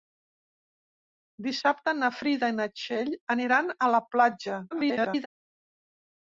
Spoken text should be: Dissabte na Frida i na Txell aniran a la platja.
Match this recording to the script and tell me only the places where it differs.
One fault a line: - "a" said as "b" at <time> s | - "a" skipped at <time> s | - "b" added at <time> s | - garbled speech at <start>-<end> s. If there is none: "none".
- garbled speech at 4.7-5.3 s